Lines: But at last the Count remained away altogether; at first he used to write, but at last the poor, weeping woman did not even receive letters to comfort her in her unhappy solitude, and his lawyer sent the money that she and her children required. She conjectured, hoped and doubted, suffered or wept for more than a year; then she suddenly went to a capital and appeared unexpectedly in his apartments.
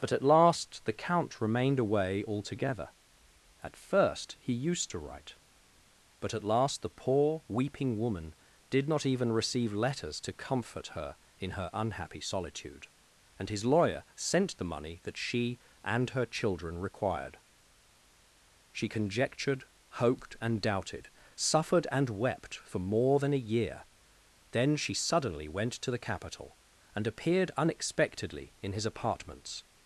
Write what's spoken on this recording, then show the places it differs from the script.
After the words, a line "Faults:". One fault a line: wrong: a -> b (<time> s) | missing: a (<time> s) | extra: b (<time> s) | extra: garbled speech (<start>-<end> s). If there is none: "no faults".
But at last the Count remained away altogether; at first he used to write, but at last the poor, weeping woman did not even receive letters to comfort her in her unhappy solitude, and his lawyer sent the money that she and her children required. She conjectured, hoped and doubted, suffered and wept for more than a year; then she suddenly went to the capital and appeared unexpectedly in his apartments.
Faults:
wrong: or -> and (21.9 s)
wrong: a -> the (25.9 s)